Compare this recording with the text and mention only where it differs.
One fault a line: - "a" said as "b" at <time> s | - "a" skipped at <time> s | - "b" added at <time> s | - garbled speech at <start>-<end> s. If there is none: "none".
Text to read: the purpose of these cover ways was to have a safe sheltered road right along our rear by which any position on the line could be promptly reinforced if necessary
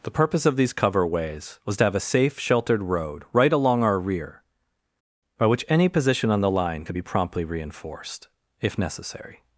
none